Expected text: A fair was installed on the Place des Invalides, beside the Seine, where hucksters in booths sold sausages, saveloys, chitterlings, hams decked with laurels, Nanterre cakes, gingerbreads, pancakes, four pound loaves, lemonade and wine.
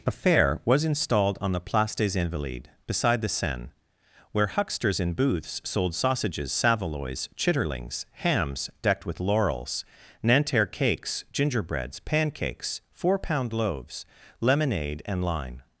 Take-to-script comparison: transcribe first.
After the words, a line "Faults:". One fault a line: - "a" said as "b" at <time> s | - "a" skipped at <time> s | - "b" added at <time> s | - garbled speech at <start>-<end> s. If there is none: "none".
A fair was installed on the Place des Invalides, beside the Seine, where hucksters in booths sold sausages, saveloys, chitterlings, hams decked with laurels, Nanterre cakes, gingerbreads, pancakes, four pound loaves, lemonade and line.
Faults:
- "wine" said as "line" at 15.2 s